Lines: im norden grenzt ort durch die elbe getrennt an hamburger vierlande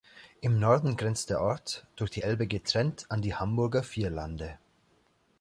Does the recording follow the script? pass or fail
fail